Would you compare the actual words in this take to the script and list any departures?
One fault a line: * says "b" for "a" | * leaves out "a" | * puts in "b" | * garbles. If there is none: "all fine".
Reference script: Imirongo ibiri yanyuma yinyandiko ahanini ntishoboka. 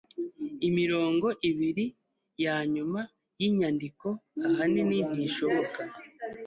all fine